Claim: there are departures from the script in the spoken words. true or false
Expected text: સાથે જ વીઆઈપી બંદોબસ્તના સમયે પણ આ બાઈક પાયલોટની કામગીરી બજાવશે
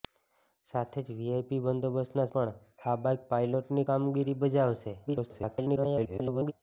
true